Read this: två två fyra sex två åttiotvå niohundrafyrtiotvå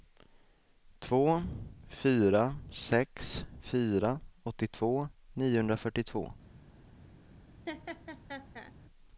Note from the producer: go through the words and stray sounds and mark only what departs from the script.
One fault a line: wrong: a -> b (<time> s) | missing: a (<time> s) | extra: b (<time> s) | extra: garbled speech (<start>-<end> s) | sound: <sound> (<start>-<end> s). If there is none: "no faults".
missing: två (1.4 s)
wrong: två -> fyra (3.6 s)
sound: laugh (7.7-8.7 s)